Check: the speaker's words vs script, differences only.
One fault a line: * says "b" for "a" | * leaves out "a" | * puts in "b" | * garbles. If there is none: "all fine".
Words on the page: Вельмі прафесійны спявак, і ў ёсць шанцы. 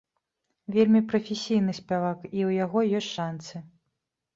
* puts in "яго"